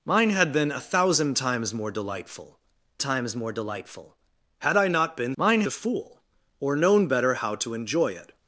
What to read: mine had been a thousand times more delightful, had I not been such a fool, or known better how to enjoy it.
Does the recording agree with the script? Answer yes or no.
no